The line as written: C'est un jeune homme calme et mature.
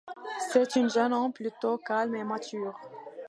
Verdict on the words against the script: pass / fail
fail